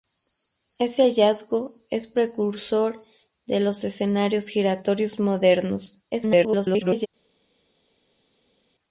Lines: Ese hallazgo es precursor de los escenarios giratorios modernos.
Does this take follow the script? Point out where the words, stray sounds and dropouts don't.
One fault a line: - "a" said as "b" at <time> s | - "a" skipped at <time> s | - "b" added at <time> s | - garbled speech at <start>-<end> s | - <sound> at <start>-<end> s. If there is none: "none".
- garbled speech at 6.1-7.1 s